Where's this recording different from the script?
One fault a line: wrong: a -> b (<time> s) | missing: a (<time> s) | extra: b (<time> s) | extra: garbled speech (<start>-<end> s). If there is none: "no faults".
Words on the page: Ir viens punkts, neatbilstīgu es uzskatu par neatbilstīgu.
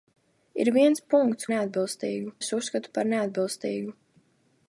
no faults